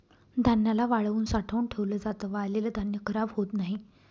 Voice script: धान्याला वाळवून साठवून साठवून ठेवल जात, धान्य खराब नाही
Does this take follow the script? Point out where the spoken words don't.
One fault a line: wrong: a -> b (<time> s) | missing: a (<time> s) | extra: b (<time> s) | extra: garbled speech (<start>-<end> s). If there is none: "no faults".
missing: साठवून (1.6 s)
extra: वाळलेल (2.3 s)
extra: होत (3.3 s)